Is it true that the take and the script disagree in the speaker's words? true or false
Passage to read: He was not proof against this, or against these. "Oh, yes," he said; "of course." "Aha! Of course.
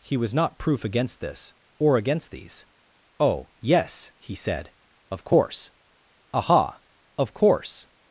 false